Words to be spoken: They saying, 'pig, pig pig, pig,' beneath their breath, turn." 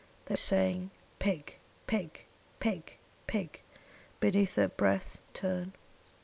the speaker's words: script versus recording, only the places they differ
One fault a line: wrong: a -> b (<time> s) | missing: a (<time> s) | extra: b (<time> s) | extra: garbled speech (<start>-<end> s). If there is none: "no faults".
no faults